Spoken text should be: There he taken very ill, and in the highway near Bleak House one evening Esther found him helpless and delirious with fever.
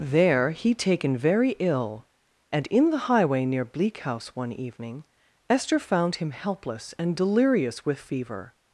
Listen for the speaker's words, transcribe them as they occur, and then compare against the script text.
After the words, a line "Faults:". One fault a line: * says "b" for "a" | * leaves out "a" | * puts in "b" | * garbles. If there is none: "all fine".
There he taken very ill, and in the highway near Bleak House one evening Esther found him helpless and delirious with fever.
Faults:
all fine